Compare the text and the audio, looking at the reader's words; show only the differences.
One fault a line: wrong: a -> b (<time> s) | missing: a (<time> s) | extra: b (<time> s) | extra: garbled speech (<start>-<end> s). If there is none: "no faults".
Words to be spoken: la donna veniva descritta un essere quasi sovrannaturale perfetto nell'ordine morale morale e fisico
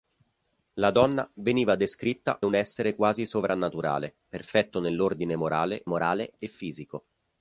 no faults